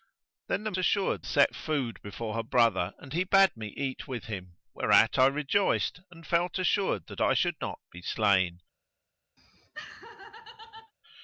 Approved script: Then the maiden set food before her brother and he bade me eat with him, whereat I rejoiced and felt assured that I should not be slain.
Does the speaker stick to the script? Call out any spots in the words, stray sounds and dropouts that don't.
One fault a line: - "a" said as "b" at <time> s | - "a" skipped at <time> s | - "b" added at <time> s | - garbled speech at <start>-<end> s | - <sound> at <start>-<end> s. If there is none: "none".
- "maiden" said as "assured" at 0.8 s
- laugh at 9.4-10.9 s